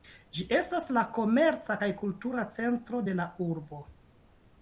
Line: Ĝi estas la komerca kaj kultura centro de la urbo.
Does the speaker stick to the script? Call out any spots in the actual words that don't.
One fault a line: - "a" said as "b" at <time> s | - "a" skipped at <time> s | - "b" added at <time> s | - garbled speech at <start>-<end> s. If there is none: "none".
none